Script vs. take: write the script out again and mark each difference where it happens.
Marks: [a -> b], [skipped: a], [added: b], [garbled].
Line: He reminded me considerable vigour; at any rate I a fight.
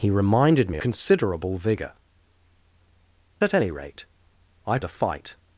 He reminded me considerable vigour; at any rate I a fight.